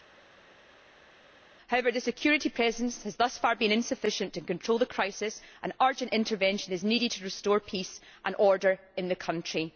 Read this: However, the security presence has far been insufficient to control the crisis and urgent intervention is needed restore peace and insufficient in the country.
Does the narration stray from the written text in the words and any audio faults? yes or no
yes